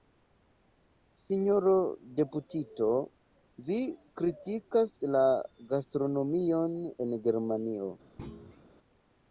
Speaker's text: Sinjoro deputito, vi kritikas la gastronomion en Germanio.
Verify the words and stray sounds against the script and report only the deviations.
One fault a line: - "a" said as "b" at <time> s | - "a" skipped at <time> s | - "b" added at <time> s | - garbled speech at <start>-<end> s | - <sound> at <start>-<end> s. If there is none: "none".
- thud at 8.2-8.7 s